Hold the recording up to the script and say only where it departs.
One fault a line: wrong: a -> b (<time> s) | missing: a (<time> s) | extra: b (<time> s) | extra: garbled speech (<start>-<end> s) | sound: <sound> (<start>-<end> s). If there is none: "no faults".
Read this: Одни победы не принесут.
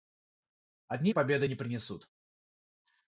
no faults